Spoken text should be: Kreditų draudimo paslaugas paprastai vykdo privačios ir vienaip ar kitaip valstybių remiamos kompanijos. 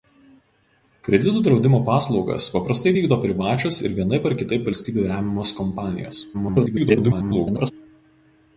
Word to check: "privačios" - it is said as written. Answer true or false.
true